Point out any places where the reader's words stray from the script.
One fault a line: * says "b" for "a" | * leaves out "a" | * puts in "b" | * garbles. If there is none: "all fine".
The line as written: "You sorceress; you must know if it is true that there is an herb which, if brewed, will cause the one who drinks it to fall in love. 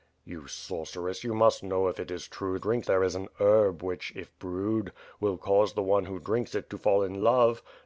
* says "drinks" for "that"